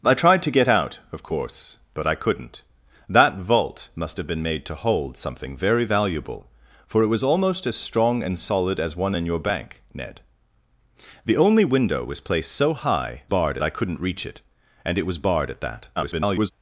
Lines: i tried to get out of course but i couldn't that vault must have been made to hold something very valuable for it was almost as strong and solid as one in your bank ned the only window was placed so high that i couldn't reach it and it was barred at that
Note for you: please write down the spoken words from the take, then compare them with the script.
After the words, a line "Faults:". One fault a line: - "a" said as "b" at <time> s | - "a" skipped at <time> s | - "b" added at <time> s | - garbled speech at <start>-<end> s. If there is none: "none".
i tried to get out of course but i couldn't that vault must have been made to hold something very valuable for it was almost as strong and solid as one in your bank ned the only window was placed so high barred i couldn't reach it and it was barred at that [garbled]
Faults:
- "that" said as "barred" at 13.3 s
- garbled speech at 16.0-16.5 s